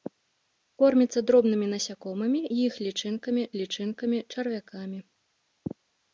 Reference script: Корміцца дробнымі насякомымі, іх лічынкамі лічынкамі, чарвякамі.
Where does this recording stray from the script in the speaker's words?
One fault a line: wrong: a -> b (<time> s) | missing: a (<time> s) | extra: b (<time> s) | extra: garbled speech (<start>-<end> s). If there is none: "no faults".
no faults